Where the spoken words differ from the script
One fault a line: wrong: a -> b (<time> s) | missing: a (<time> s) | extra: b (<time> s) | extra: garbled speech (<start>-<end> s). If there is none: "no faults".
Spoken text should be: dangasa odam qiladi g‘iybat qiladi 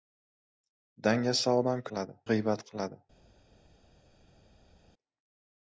no faults